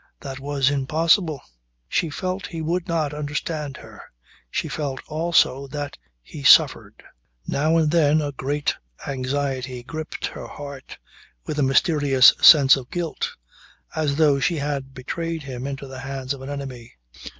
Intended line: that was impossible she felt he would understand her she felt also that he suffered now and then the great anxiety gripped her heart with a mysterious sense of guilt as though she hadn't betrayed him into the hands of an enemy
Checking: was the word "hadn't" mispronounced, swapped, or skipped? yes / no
yes